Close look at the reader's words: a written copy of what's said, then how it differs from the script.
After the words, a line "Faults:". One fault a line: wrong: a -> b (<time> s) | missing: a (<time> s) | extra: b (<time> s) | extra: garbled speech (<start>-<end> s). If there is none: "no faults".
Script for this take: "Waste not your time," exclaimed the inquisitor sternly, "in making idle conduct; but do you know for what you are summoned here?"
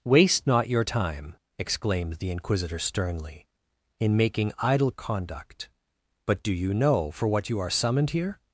"Waste not your time," exclaimed the inquisitor sternly, "in making idle conduct; but do you know for what you are summoned here?"
Faults:
no faults